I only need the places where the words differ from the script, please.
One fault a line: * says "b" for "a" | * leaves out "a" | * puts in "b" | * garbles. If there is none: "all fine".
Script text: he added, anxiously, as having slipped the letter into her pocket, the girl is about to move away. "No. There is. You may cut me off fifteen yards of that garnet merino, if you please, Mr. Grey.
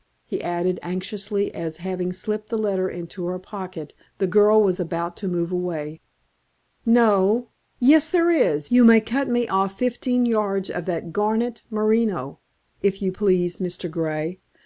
* says "was" for "is"
* puts in "Yes"